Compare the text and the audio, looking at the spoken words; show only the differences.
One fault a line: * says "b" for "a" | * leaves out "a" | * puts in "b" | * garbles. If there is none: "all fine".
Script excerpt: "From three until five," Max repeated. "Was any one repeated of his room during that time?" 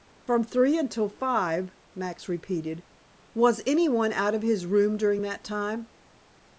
* says "out" for "repeated"